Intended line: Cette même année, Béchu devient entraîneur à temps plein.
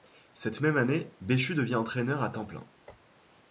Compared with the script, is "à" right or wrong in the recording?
right